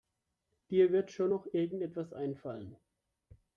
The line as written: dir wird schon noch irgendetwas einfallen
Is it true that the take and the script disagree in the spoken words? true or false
false